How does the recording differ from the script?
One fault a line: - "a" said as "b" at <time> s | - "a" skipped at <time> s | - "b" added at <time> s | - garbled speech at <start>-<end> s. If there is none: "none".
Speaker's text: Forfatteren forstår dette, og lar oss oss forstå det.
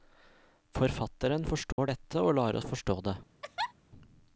- "oss" skipped at 2.7 s